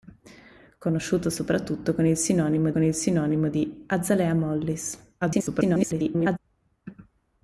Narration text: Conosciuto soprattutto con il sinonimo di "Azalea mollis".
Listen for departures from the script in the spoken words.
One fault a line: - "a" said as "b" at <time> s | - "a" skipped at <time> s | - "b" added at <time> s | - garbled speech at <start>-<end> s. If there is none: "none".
- "con il sinonimo" added at 2.7 s
- garbled speech at 5.2-6.4 s